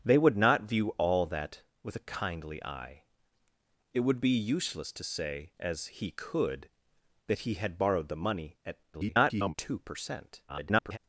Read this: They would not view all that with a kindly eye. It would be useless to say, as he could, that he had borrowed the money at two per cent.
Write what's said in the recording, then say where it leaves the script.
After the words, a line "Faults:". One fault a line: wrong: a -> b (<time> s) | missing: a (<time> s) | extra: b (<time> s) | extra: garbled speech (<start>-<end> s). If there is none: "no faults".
They would not view all that with a kindly eye. It would be useless to say, as he could, that he had borrowed the money at [garbled] two per cent. [garbled]
Faults:
extra: garbled speech (8.9-9.5 s)
extra: garbled speech (10.5-11.0 s)